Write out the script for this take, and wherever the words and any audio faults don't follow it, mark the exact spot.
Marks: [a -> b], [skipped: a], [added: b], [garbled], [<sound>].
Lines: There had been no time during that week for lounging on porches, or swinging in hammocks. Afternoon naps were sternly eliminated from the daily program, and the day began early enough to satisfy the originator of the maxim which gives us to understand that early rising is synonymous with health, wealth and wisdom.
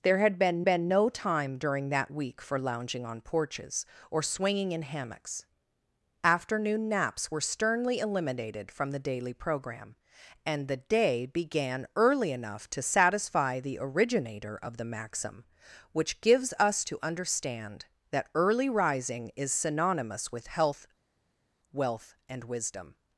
There had been [added: been] no time during that week for lounging on porches, or swinging in hammocks. Afternoon naps were sternly eliminated from the daily program, and the day began early enough to satisfy the originator of the maxim which gives us to understand that early rising is synonymous with health, wealth and wisdom.